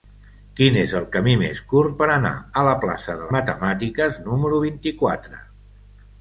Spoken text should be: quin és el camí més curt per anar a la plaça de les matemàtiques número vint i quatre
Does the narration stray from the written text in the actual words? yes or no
yes